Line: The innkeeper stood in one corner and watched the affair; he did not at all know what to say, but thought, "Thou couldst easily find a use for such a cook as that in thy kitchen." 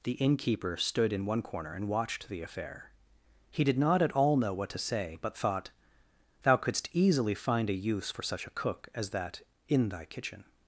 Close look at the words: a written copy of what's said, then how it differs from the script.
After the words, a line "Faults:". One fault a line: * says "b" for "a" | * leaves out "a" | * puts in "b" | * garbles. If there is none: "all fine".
The innkeeper stood in one corner and watched the affair; he did not at all know what to say, but thought, "Thou couldst easily find a use for such a cook as that in thy kitchen."
Faults:
all fine